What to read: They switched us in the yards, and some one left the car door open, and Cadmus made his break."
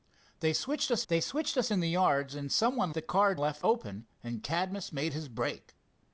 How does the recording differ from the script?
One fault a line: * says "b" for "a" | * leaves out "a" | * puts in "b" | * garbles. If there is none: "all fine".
* puts in "they switched us"
* leaves out "left"
* says "left" for "door"